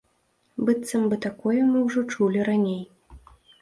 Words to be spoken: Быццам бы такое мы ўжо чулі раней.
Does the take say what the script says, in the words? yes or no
yes